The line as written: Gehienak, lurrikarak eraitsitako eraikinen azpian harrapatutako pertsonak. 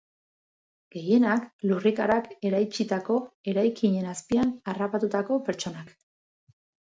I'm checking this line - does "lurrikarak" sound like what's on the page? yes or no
yes